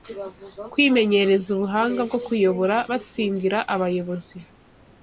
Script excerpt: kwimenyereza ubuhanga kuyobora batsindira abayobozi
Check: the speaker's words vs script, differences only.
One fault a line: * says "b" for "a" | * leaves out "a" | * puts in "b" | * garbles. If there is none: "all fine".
* puts in "bwo"